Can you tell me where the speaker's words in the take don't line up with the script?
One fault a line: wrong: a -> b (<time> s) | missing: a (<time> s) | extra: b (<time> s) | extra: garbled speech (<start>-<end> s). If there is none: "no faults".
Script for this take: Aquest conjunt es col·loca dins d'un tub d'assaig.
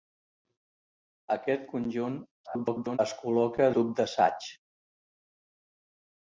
extra: garbled speech (2.4-3.0 s)
missing: dins d'un (3.7 s)